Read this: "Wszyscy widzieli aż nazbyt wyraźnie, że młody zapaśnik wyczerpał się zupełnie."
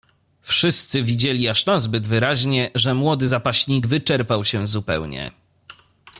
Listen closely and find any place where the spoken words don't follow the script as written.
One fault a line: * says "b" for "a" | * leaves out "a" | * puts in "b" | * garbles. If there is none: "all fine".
all fine